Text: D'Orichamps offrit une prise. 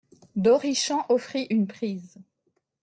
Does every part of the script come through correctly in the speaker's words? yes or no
yes